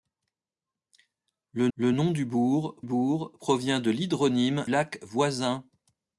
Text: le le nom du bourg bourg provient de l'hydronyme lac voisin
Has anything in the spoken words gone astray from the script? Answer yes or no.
no